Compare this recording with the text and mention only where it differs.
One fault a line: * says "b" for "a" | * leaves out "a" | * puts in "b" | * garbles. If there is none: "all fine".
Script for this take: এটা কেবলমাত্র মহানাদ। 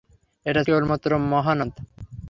all fine